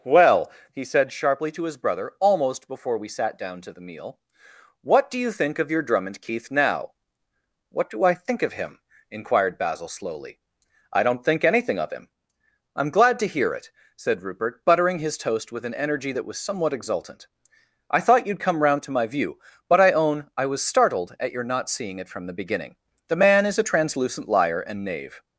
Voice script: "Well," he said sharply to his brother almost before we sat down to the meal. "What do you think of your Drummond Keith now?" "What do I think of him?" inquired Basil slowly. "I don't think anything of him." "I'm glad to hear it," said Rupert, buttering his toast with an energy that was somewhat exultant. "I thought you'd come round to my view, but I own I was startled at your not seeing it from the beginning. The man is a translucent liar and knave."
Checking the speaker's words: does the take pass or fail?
pass